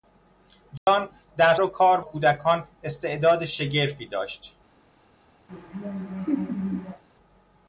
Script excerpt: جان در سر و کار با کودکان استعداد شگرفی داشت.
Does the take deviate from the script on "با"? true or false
true